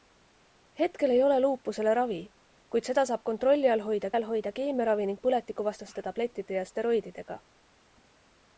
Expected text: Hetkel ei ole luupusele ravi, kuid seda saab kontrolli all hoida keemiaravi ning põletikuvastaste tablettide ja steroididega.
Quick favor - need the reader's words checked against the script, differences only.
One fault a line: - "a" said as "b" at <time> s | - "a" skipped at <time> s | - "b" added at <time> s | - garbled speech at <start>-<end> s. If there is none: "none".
- "all hoida" added at 4.2 s